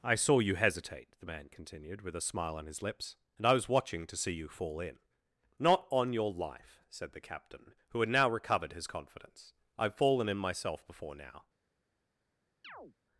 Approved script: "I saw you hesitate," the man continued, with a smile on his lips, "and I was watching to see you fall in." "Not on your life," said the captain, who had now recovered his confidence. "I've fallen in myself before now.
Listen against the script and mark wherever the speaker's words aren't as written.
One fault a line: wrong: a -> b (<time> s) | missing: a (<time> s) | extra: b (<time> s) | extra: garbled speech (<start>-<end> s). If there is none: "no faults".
no faults